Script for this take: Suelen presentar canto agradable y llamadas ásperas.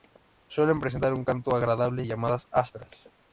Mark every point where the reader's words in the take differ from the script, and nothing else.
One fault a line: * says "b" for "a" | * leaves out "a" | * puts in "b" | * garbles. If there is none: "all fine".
* puts in "un"